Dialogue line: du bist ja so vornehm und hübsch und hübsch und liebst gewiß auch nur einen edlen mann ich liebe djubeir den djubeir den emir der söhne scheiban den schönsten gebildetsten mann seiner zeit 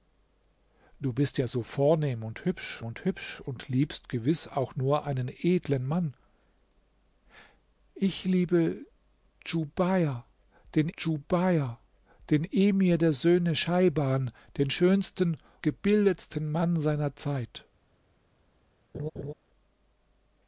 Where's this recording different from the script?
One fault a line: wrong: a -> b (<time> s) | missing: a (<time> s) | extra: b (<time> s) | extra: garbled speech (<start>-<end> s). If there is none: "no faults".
no faults